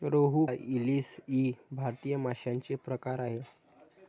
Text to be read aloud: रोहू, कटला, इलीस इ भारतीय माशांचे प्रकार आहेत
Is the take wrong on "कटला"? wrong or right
wrong